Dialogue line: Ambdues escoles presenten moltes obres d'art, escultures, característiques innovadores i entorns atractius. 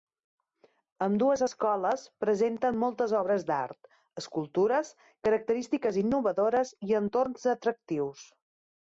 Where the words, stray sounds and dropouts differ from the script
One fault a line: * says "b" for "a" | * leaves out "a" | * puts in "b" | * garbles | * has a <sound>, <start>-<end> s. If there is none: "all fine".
all fine